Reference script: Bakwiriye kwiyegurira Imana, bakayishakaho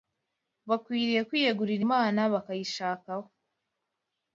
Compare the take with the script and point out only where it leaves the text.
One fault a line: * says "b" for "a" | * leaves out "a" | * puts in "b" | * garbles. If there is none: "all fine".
all fine